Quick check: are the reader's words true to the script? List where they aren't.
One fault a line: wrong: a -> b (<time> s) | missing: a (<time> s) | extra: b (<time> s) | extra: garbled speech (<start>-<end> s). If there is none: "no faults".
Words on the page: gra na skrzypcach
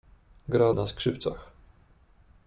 no faults